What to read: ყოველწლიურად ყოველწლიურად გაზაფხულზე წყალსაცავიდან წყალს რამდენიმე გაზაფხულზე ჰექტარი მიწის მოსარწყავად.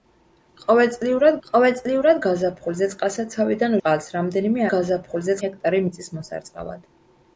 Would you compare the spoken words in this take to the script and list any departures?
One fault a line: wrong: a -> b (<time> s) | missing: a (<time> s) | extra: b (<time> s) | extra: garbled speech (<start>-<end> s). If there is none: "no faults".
no faults